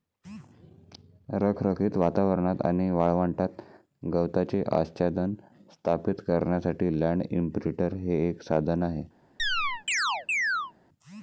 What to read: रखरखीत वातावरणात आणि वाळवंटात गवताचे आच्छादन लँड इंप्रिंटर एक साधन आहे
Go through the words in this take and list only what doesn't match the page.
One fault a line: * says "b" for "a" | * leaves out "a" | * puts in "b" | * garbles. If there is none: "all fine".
* puts in "स्थापित करण्यासाठी"
* puts in "हे"